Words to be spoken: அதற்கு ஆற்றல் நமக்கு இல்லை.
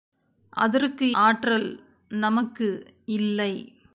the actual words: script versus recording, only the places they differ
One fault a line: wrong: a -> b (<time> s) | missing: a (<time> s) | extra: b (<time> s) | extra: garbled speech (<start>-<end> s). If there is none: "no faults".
no faults